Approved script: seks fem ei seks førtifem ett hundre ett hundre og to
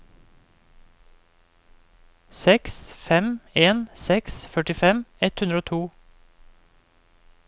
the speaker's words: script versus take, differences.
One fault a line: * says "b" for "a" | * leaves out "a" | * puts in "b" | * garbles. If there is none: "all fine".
* says "en" for "ei"
* leaves out "ett hundre"